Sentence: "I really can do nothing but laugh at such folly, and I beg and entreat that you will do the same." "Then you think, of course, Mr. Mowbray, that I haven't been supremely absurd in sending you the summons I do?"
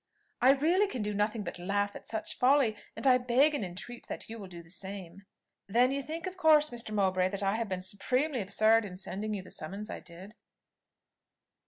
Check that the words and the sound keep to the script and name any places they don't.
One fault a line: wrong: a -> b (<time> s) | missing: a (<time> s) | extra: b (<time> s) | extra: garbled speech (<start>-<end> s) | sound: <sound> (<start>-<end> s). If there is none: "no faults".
wrong: haven't -> have (7.6 s)
wrong: do -> did (10.0 s)